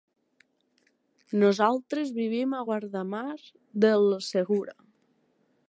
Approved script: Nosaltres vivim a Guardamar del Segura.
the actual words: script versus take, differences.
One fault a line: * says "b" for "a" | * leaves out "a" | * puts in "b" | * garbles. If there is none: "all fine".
all fine